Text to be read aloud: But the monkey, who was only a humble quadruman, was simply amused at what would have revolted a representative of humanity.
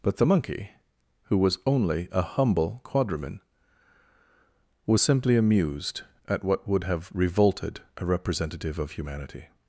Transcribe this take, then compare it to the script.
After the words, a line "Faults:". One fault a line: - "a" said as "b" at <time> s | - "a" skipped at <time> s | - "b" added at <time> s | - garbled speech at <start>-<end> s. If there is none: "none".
But the monkey, who was only a humble quadruman, was simply amused at what would have revolted a representative of humanity.
Faults:
none